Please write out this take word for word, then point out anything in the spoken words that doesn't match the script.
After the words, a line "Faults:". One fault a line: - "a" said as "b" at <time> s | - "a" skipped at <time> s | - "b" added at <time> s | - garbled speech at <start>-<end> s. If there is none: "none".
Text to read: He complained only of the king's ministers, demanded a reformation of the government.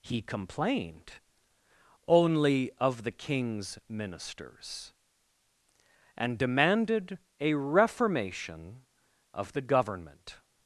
He complained only of the king's ministers, and demanded a reformation of the government.
Faults:
- "and" added at 6.2 s